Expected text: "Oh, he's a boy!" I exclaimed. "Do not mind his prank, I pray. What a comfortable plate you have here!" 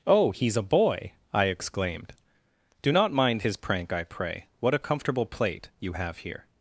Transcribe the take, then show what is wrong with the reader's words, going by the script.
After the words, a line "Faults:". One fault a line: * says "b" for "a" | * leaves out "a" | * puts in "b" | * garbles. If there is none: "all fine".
"Oh, he's a boy!" I exclaimed. "Do not mind his prank, I pray. What a comfortable plate you have here!"
Faults:
all fine